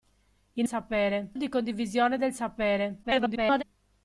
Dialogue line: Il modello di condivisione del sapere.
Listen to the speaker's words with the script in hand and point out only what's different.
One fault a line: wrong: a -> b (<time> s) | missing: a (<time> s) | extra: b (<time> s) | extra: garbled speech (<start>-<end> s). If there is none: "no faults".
wrong: modello -> sapere (0.6 s)
extra: garbled speech (3.0-3.6 s)